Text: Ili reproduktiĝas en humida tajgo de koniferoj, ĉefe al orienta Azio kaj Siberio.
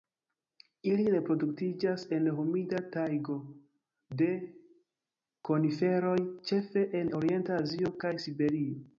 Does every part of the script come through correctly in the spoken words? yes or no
no